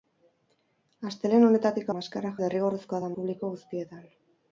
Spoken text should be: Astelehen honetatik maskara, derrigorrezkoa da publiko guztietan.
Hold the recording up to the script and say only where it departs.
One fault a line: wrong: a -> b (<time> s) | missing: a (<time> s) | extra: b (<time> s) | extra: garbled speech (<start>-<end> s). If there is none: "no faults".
no faults